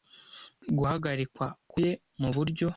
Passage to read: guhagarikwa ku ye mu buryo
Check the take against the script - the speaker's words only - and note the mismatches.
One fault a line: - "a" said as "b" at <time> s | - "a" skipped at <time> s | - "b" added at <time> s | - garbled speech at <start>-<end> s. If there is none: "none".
none